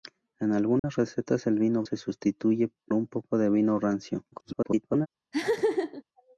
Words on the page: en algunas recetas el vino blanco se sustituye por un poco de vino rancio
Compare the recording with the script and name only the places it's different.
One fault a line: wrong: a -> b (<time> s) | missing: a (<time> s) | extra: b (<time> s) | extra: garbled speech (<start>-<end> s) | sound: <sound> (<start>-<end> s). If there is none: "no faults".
sound: dropout (0.8-0.8 s)
missing: blanco (1.8 s)
missing: por (2.7 s)
extra: garbled speech (4.3-5.1 s)
sound: laugh (5.3-6.0 s)